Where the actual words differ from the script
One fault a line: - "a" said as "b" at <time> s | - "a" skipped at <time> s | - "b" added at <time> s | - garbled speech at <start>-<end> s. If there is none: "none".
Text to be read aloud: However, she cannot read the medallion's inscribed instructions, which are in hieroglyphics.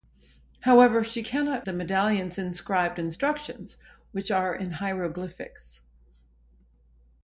- "read" skipped at 1.7 s